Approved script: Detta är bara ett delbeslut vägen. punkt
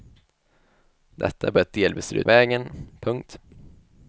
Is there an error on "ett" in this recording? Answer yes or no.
no